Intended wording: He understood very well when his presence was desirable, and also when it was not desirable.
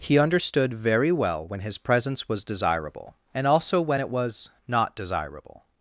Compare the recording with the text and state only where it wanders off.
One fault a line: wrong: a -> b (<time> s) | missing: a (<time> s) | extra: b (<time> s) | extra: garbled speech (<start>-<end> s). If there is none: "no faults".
no faults